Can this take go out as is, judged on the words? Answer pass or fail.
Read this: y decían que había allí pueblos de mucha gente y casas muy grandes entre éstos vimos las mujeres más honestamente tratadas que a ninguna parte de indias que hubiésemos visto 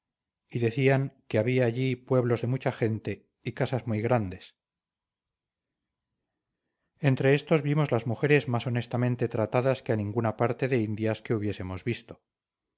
pass